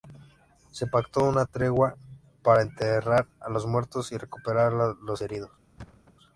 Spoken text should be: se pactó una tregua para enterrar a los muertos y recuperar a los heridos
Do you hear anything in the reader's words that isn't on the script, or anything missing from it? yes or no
no